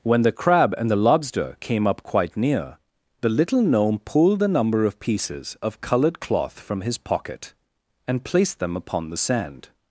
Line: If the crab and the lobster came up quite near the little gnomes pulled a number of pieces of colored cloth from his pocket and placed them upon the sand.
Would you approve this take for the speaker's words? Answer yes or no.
no